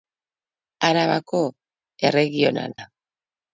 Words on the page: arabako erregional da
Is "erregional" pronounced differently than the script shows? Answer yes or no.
no